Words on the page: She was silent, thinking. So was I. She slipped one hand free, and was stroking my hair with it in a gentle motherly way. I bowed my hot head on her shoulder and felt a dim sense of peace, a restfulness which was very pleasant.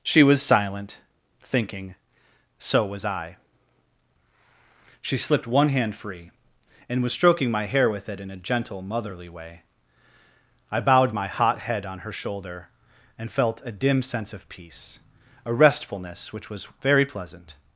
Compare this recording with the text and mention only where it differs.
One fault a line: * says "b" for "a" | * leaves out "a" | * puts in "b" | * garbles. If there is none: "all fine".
all fine